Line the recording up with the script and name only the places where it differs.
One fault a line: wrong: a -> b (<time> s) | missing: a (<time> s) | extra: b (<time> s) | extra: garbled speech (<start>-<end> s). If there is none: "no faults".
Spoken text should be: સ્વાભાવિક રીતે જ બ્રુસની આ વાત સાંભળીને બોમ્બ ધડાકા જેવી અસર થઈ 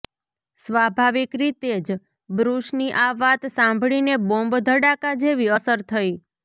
no faults